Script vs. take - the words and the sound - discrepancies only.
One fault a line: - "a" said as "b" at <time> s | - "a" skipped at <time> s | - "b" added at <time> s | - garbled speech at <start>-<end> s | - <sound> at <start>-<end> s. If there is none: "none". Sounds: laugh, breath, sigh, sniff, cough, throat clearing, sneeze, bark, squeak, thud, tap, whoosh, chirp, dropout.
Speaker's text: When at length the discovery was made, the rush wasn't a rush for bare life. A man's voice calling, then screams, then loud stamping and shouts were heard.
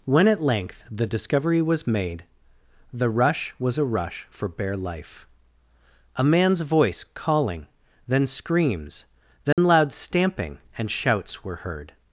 - "wasn't" said as "was" at 3.6 s
- dropout at 9.5-9.6 s